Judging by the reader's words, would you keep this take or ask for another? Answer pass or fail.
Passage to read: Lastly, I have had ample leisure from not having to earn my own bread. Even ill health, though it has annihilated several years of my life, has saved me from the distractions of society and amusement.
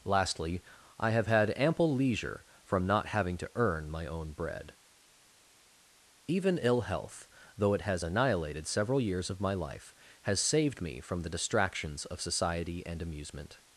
pass